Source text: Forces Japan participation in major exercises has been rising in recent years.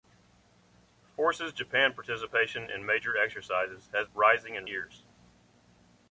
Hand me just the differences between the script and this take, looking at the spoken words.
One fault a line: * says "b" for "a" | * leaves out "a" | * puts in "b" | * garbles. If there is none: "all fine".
* leaves out "been"
* leaves out "recent"